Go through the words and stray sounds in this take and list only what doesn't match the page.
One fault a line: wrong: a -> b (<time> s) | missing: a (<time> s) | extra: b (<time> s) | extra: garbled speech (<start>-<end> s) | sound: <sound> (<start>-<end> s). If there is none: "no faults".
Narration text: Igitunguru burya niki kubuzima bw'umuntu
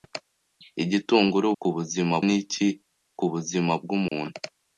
wrong: burya -> kubuzima (1.6 s)
sound: dropout (4.1-4.1 s)